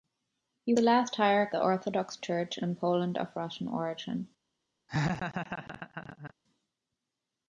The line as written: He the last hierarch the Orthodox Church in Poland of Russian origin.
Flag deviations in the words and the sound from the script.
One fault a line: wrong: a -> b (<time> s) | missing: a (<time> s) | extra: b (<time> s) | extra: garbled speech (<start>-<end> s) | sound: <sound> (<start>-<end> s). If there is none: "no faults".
sound: laugh (4.9-6.3 s)